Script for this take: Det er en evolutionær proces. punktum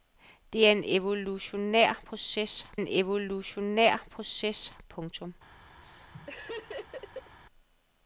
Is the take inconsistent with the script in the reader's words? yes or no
yes